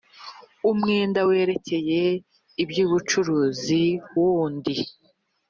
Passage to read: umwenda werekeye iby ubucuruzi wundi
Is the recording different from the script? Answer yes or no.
no